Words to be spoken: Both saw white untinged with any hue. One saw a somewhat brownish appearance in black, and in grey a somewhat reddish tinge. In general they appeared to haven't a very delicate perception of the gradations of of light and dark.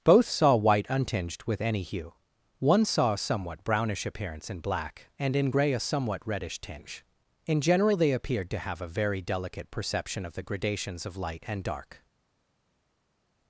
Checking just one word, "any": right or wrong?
right